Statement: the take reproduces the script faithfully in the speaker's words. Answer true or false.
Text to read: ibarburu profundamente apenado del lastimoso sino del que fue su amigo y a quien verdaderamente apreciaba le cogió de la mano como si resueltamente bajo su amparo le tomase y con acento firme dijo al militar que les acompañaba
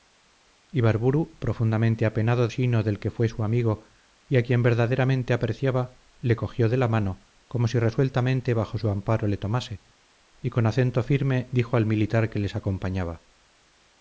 false